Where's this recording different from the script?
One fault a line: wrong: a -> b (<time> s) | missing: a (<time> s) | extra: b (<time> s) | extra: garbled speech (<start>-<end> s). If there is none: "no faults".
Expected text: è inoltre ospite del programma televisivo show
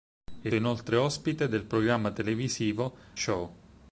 no faults